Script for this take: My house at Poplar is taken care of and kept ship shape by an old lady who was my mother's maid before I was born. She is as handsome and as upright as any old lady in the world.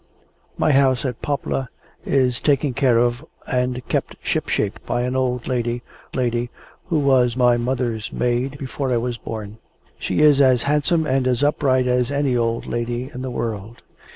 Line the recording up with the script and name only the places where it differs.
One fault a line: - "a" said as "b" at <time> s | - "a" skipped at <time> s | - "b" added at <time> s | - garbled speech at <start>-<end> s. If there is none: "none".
- "lady" added at 6.1 s